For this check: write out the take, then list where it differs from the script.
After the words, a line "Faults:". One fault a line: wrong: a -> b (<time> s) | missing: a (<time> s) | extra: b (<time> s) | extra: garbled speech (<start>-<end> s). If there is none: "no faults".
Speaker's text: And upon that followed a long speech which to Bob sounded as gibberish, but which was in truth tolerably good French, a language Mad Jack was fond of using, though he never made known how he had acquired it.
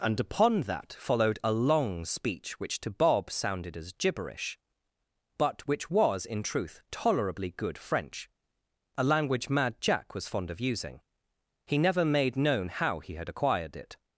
And upon that followed a long speech which to Bob sounded as gibberish, but which was in truth tolerably good French, a language Mad Jack was fond of using, he never made known how he had acquired it.
Faults:
missing: though (11.0 s)